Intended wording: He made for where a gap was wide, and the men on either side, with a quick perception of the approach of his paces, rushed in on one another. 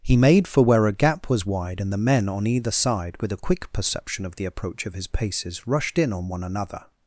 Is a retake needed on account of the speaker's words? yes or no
no